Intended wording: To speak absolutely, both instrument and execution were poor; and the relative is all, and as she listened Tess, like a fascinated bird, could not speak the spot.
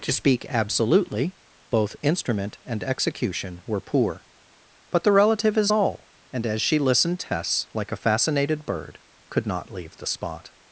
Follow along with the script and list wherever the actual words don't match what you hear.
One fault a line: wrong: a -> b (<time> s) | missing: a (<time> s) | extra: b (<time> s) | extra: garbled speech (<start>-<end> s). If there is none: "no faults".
wrong: and -> but (4.9 s)
wrong: speak -> leave (9.7 s)